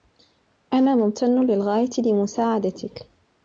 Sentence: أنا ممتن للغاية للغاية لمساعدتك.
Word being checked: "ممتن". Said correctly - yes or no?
yes